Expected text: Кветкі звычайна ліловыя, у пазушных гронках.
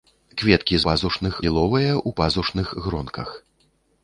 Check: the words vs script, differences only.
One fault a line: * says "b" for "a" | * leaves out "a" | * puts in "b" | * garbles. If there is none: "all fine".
* says "пазушных" for "звычайна"